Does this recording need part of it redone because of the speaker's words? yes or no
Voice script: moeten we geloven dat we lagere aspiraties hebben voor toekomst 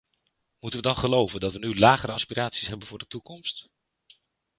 yes